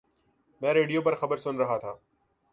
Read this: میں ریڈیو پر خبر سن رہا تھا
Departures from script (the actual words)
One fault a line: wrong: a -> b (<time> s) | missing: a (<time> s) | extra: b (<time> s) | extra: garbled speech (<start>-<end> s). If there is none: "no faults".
no faults